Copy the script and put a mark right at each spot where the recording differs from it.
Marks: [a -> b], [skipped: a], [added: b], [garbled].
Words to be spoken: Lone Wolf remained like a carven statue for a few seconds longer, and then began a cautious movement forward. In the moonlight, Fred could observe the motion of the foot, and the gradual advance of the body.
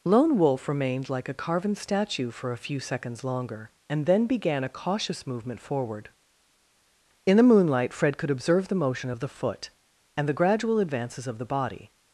Lone Wolf remained like a carven statue for a few seconds longer, and then began a cautious movement forward. In the moonlight, Fred could observe the motion of the foot, and the gradual [advance -> advances] of the body.